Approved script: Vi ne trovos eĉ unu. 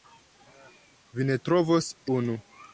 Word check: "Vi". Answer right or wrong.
right